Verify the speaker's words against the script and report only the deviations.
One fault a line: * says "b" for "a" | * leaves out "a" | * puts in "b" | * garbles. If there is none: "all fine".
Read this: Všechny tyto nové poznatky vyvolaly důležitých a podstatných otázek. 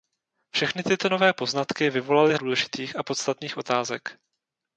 all fine